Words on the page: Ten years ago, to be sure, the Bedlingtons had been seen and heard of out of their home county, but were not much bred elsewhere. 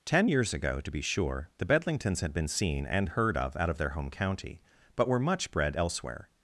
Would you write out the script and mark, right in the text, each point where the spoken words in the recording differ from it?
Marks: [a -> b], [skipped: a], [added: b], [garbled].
Ten years ago, to be sure, the Bedlingtons had been seen and heard of out of their home county, but were [skipped: not] much bred elsewhere.